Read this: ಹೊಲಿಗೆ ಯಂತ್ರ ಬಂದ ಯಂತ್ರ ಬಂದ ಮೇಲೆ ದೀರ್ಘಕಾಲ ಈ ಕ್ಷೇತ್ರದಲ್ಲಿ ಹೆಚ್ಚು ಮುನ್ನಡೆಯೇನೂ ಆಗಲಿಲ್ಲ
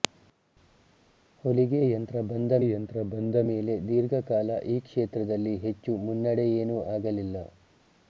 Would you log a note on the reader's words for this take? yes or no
no